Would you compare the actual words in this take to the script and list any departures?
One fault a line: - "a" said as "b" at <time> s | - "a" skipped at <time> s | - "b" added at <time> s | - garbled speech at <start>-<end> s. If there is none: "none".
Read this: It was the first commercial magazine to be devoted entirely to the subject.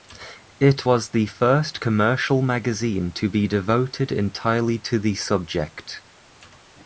none